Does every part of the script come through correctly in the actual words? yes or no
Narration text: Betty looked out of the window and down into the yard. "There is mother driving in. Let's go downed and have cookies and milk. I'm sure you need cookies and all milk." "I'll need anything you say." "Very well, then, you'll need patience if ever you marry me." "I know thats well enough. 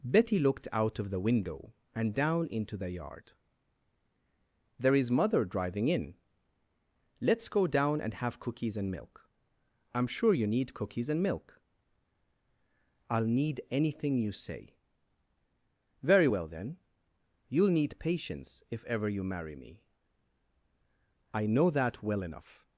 no